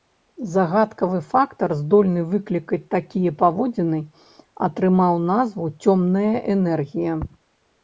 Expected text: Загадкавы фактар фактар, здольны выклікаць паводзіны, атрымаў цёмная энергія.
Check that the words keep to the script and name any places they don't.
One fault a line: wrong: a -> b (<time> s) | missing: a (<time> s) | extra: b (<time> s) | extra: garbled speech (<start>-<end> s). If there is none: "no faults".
missing: фактар (1.7 s)
extra: такія (3.0 s)
extra: назву (5.3 s)